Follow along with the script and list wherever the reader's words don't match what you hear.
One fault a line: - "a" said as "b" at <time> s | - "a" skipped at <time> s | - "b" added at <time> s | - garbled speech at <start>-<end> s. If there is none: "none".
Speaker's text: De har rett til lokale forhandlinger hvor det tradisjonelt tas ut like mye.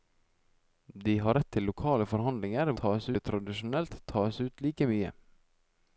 - "hvor" said as "tas" at 2.8 s